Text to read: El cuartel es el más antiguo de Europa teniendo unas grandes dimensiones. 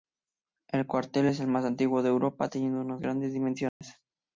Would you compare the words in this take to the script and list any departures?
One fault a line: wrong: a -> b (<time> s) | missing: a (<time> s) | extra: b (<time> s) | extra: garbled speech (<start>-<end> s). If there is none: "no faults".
no faults